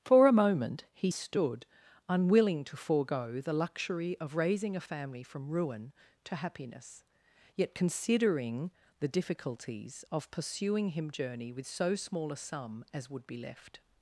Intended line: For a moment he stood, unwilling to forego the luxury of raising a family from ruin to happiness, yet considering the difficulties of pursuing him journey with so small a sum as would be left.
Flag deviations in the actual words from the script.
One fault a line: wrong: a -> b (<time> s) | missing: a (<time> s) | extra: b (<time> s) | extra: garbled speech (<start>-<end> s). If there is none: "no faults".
no faults